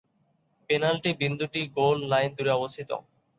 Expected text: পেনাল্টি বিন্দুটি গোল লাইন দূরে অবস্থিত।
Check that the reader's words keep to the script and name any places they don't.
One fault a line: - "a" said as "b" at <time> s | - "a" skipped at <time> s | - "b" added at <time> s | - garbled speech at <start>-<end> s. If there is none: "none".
none